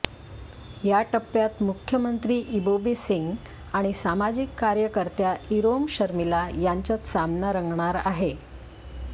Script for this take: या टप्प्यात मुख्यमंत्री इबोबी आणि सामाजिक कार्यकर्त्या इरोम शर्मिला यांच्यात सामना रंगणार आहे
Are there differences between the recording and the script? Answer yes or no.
yes